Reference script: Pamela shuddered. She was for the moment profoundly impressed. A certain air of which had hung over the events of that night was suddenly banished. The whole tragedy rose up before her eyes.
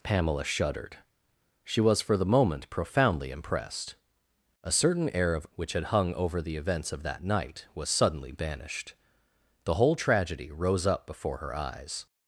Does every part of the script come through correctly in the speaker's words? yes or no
yes